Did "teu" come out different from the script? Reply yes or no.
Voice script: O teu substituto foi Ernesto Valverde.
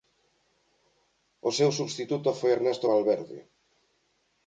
yes